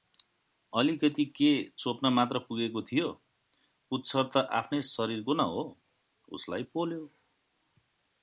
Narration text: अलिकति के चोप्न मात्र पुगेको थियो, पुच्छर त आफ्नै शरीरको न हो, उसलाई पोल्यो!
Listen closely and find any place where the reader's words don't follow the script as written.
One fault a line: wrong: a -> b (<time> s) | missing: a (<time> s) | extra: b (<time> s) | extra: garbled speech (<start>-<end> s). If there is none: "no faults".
no faults